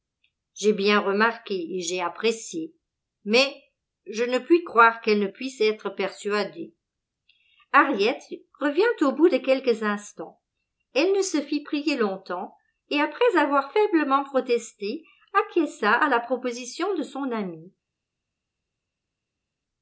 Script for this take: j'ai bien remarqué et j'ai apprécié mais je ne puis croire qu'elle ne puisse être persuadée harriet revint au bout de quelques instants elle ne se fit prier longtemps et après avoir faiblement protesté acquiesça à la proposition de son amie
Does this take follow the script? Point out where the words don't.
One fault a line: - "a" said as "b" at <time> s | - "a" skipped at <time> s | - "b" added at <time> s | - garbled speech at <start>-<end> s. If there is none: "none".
none